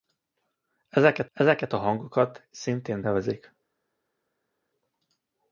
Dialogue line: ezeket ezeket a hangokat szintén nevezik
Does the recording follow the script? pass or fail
pass